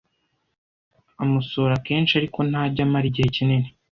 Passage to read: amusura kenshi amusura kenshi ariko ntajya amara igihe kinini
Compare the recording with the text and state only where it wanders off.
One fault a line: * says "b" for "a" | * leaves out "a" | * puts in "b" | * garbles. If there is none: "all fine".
* leaves out "amusura kenshi"